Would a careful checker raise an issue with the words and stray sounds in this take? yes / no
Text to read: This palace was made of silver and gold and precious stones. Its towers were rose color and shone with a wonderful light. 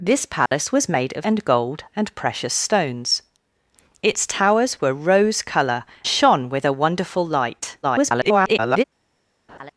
yes